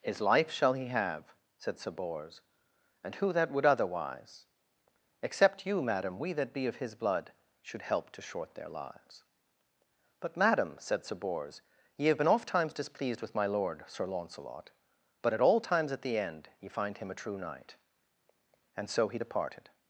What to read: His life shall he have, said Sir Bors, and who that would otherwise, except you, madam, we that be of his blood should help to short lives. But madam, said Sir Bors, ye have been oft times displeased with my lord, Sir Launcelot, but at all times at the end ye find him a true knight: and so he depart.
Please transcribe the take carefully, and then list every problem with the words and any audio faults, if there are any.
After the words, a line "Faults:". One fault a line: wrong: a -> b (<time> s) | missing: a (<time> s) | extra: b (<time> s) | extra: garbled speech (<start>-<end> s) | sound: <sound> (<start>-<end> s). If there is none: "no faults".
His life shall he have, said Sir Bors, and who that would otherwise, except you, madam, we that be of his blood should help to short their lives. But madam, said Sir Bors, ye have been oft times displeased with my lord, Sir Launcelot, but at all times at the end ye find him a true knight: and so he departed.
Faults:
extra: their (8.6 s)
wrong: depart -> departed (19.2 s)